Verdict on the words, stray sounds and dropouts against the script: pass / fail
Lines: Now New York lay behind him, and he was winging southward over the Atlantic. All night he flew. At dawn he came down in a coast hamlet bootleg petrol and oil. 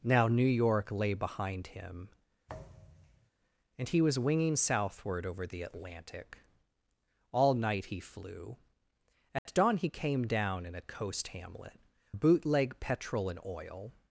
fail